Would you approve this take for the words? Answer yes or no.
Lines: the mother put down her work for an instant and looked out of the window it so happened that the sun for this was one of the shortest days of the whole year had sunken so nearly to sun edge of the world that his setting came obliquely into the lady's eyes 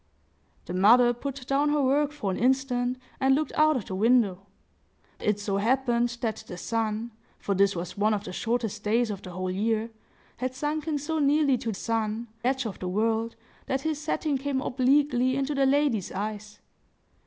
yes